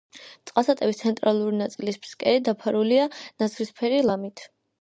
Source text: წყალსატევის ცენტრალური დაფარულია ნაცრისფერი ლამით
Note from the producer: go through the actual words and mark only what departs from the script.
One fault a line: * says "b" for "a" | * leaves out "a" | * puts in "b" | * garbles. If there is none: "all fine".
* puts in "ნაწილის ფსკერი"